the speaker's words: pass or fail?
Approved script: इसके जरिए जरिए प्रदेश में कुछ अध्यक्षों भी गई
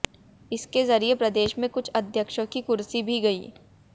fail